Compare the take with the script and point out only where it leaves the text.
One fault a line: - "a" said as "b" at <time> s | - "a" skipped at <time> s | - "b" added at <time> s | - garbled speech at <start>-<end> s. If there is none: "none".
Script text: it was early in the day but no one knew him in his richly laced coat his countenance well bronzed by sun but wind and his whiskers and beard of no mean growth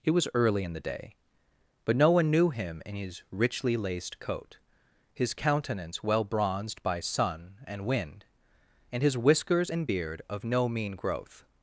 - "but" said as "and" at 7.7 s